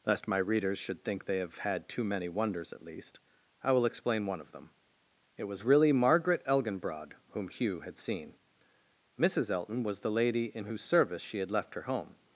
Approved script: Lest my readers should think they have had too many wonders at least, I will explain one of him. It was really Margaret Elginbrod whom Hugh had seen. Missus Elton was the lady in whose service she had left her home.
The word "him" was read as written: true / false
false